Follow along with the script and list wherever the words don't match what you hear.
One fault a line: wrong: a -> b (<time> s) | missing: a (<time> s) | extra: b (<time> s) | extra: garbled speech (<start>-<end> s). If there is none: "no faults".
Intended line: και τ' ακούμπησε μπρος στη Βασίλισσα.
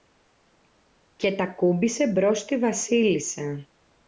no faults